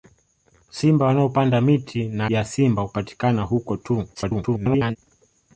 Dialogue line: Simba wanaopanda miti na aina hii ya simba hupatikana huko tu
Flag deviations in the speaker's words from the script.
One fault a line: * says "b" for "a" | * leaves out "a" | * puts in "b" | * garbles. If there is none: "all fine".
* leaves out "aina hii"
* garbles